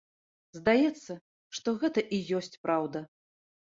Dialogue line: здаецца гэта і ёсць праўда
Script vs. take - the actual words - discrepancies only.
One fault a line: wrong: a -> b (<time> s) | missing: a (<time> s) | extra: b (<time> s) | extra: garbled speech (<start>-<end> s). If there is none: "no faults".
extra: што (1.6 s)